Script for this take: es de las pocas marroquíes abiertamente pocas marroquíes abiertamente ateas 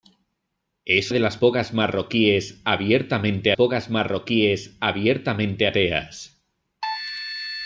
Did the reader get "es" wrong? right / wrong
right